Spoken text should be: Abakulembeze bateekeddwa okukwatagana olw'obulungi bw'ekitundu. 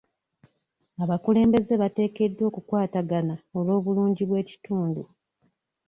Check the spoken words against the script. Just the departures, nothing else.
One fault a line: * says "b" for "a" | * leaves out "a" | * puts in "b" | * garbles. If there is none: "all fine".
all fine